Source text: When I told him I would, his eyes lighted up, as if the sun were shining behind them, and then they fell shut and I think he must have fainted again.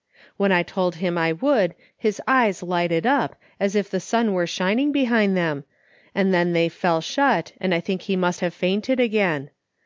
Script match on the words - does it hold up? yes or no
yes